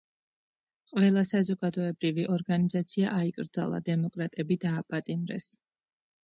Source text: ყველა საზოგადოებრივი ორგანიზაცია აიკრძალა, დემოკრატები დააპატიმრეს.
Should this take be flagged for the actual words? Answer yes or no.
no